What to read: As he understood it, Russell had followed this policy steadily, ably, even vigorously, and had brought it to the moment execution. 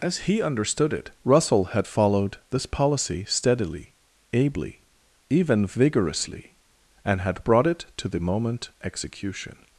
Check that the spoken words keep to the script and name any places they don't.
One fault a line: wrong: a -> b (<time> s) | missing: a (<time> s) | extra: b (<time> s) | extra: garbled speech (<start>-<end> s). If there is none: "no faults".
no faults